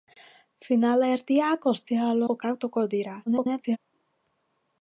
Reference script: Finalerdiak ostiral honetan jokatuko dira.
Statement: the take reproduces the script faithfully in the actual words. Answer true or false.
false